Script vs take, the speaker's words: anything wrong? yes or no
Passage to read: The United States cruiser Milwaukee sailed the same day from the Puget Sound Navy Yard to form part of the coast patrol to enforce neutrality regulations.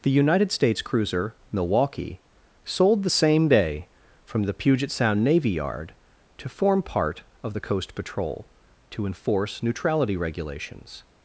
yes